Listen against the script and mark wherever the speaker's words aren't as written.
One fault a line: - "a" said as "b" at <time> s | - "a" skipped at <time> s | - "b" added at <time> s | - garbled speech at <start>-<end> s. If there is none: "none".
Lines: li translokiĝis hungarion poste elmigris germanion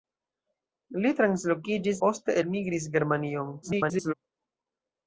- "hungarion" skipped at 2.0 s
- garbled speech at 3.6-4.1 s